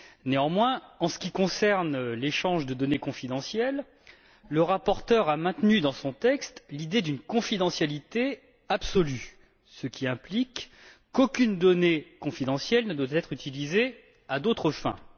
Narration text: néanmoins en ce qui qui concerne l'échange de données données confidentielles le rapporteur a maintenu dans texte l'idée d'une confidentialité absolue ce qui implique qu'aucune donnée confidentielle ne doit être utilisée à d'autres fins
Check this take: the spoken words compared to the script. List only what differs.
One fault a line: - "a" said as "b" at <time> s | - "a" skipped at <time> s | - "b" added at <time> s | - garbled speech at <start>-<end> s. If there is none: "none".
- "qui" skipped at 1.3 s
- "données" skipped at 3.0 s
- "son" added at 5.9 s